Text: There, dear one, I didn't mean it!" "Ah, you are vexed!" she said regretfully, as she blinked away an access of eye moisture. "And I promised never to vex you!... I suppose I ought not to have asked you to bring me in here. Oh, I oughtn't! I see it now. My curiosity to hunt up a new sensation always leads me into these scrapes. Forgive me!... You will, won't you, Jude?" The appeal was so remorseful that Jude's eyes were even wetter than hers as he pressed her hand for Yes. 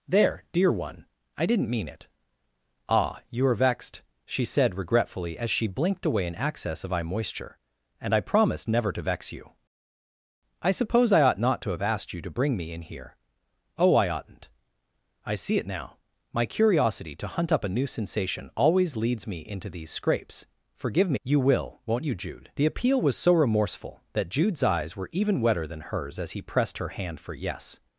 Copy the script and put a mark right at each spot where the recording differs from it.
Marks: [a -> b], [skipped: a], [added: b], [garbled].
There, dear one, I didn't mean it!" "Ah, you are vexed!" she said regretfully, as she blinked away an access of eye moisture. "And I promised never to vex you!... I suppose I ought not to have asked you to bring me in here. Oh, I oughtn't! I see it now. My curiosity to hunt up a new sensation always leads me into these scrapes. Forgive me!... You will, won't you, Jude?" The appeal was so remorseful that Jude's eyes were even wetter than hers as he pressed her hand for Yes.